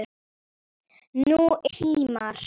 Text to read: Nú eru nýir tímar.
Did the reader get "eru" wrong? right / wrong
wrong